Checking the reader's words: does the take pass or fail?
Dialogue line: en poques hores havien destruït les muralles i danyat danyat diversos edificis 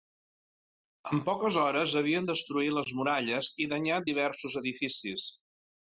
fail